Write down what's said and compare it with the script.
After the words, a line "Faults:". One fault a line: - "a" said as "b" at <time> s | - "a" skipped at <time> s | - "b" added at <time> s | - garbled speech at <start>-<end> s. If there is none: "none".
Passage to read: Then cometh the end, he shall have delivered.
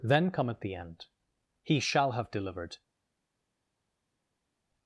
Then cometh the end, he shall have delivered.
Faults:
none